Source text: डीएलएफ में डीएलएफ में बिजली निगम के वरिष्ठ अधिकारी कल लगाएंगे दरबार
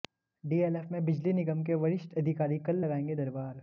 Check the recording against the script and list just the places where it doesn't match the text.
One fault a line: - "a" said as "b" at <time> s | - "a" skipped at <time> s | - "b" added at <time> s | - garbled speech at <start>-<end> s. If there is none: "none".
- "डीएलएफ में" skipped at 1.0 s